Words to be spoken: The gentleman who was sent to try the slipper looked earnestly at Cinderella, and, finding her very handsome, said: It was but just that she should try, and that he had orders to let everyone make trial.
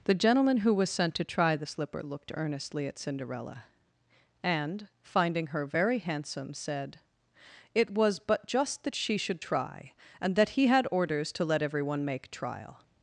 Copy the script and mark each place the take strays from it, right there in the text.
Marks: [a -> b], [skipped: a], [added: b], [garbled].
The gentleman who was sent to try the slipper looked earnestly at Cinderella, and, finding her very handsome, said: It was but just that she should try, and that he had orders to let everyone make trial.